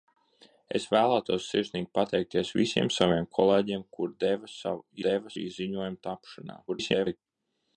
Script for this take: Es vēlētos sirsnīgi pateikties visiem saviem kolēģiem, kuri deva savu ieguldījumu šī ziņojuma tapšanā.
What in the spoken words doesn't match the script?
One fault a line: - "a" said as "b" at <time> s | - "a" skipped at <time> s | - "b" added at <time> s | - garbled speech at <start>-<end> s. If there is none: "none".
- "ieguldījumu" said as "deva" at 5.1 s
- garbled speech at 6.7-7.2 s